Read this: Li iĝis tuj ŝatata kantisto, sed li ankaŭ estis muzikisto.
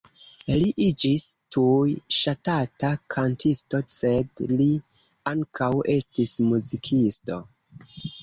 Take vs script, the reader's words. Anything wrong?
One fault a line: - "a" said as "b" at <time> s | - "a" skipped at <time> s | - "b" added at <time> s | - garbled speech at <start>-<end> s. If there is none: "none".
none